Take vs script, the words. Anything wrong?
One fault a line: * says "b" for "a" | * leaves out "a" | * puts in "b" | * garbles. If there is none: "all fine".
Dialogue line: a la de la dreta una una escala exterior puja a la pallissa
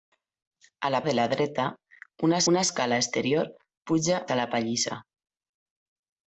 all fine